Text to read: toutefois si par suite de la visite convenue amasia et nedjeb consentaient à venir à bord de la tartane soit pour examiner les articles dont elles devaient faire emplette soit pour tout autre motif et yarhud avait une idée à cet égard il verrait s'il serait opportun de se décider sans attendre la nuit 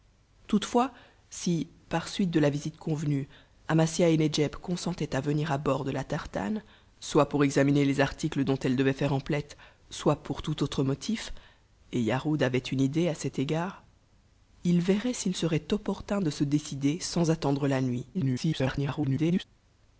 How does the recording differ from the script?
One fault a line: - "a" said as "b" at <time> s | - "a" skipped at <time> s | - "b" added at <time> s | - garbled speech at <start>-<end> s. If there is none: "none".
- garbled speech at 18.1-19.4 s